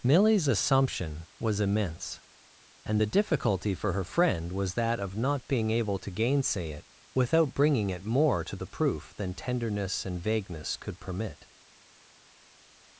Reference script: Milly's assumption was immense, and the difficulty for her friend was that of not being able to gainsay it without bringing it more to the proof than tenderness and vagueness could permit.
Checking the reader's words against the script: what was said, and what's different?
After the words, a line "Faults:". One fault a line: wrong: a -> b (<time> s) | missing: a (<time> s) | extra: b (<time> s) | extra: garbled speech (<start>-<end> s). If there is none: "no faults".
Milly's assumption was immense, and the difficulty for her friend was that of not being able to gainsay it without bringing it more to the proof than tenderness and vagueness could permit.
Faults:
no faults